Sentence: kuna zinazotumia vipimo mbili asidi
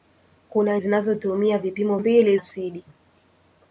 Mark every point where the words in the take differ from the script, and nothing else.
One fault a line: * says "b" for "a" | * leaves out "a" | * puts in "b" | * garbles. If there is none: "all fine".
all fine